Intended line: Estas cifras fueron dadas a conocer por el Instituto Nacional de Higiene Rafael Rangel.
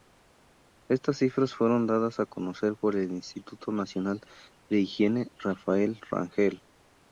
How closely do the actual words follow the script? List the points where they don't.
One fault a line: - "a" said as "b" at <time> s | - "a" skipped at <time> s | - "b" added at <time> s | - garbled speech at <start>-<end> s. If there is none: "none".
none